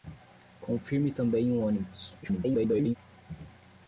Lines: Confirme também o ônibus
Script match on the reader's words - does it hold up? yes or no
no